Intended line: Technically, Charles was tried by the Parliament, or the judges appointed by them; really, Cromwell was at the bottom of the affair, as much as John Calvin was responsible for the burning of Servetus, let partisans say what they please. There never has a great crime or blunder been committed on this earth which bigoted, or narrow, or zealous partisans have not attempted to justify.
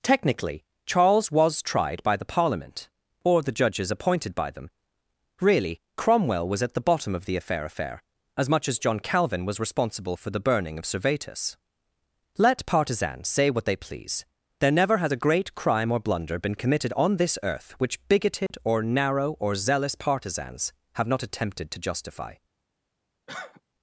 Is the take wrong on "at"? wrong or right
right